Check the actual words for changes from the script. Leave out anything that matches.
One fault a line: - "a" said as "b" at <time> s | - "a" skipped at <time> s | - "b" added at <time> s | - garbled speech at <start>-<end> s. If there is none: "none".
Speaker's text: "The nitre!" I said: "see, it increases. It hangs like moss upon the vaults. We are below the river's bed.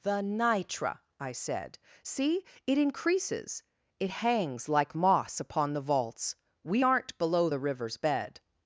- "are" said as "aren't" at 6.8 s